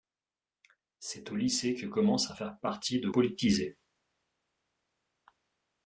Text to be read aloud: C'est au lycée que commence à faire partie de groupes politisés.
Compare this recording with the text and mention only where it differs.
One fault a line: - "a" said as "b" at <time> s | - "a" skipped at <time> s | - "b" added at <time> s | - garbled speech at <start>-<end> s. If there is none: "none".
- "groupes" skipped at 3.1 s